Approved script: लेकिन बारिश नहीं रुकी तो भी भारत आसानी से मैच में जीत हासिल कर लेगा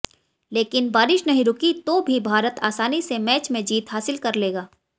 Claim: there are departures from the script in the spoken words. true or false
false